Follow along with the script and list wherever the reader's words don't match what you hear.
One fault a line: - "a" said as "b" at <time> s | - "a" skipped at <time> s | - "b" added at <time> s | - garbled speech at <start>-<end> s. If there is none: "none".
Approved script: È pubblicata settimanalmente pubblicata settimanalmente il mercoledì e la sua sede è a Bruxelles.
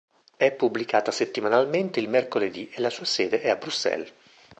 - "pubblicata settimanalmente" skipped at 2.0 s